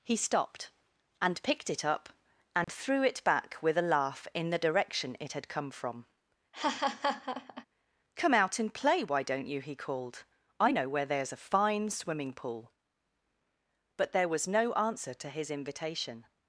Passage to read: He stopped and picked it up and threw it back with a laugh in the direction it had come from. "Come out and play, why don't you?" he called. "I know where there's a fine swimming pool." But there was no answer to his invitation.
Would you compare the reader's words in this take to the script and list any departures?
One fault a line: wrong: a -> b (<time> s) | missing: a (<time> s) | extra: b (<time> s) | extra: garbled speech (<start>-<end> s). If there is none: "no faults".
no faults